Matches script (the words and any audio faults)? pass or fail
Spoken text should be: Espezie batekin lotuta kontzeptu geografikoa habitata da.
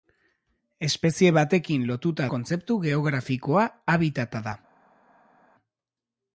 pass